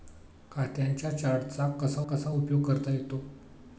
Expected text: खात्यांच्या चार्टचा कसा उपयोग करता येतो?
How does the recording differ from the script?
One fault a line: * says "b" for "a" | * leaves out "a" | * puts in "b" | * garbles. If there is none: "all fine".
* puts in "कसा"